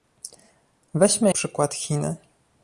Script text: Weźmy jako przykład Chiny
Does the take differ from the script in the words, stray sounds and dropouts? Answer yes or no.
yes